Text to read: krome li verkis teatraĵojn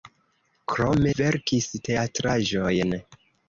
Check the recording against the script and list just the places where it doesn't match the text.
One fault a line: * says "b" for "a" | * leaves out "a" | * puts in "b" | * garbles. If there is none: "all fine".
* leaves out "li"